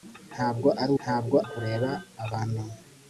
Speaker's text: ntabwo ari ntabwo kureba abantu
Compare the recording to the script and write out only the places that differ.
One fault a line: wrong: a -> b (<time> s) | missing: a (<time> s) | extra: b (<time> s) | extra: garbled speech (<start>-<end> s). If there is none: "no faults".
no faults